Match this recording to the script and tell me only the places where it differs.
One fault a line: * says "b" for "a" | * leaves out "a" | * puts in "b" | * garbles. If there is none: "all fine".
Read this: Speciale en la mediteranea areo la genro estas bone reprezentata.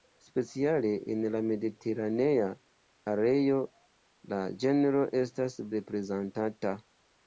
* leaves out "bone"